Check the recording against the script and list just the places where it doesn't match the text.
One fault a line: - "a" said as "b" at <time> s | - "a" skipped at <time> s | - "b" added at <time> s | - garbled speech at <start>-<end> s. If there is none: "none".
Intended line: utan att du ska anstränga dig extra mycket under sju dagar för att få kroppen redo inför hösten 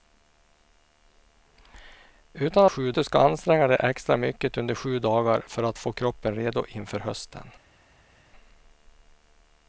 - "att" said as "sju" at 2.7 s